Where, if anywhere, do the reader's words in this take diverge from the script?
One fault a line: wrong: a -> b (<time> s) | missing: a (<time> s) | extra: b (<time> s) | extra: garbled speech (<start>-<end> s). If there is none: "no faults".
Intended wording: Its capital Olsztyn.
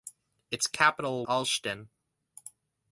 no faults